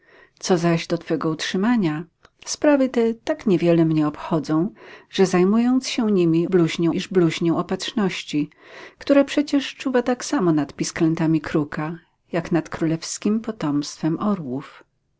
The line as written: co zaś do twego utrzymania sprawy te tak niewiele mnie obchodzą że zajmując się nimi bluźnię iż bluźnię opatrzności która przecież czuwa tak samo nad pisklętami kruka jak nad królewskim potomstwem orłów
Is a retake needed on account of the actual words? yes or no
no